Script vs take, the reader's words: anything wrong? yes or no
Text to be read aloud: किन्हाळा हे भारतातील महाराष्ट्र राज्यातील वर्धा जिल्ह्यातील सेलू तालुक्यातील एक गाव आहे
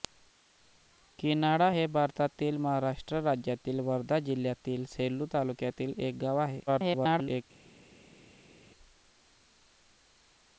yes